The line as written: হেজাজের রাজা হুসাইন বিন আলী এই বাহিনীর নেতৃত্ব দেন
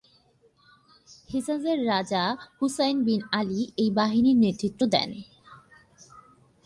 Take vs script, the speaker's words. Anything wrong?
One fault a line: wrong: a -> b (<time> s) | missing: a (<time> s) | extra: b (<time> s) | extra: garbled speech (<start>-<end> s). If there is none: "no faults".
no faults